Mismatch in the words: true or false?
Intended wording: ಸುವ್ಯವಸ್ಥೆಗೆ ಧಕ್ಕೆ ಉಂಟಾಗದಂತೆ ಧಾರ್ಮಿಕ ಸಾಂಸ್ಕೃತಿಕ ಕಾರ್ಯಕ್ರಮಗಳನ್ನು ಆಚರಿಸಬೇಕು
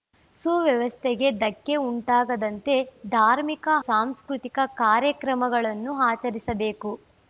false